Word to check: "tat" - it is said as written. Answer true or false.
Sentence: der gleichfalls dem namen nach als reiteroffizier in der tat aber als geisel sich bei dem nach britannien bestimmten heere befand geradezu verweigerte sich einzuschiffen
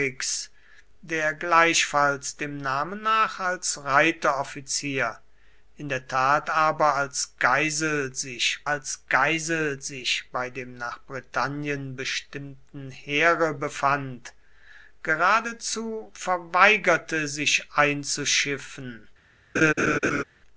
true